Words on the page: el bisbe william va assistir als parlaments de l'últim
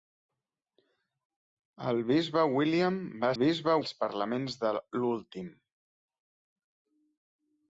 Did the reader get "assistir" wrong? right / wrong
wrong